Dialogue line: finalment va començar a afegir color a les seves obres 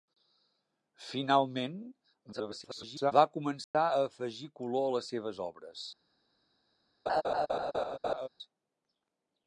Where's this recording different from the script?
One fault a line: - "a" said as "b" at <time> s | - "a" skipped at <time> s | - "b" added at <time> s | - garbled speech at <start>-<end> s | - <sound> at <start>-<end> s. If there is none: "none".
- garbled speech at 2.3-3.1 s
- dropout at 3.6-3.7 s
- laugh at 7.1-8.3 s